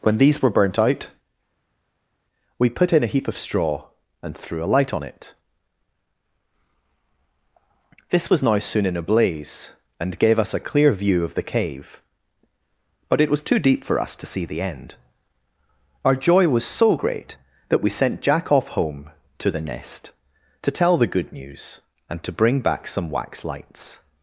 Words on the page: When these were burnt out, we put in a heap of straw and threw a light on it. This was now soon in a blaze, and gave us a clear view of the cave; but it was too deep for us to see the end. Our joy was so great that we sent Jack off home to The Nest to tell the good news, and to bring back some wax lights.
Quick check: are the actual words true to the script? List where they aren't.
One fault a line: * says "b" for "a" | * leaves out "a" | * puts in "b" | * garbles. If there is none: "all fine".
all fine